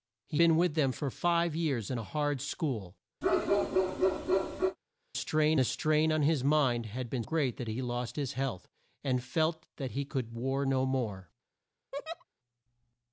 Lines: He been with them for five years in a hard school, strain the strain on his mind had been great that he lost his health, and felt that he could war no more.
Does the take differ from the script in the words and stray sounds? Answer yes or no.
yes